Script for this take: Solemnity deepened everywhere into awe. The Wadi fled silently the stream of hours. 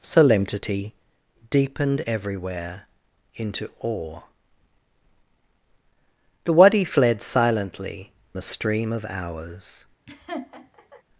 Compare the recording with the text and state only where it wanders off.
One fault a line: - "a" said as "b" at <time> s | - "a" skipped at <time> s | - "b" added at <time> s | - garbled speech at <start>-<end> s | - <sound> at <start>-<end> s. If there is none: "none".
- laugh at 10.1-11.0 s